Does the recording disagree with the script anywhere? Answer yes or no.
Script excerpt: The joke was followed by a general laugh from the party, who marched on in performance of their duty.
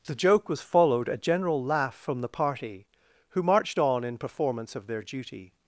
yes